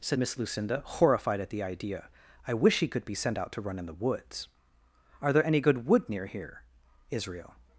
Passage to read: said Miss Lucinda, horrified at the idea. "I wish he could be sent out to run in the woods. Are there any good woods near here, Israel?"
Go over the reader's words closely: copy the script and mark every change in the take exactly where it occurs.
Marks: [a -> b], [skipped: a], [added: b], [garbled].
said Miss Lucinda, horrified at the idea. "I wish he could be sent out to run in the woods. Are there any good [woods -> wood] near here, Israel?"